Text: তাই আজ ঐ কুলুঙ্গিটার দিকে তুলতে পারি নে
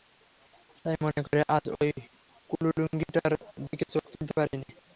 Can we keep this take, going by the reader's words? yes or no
no